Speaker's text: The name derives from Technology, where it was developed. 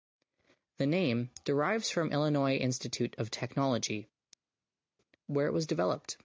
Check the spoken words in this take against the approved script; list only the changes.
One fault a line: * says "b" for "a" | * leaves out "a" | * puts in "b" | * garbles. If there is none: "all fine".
* puts in "Illinois Institute of"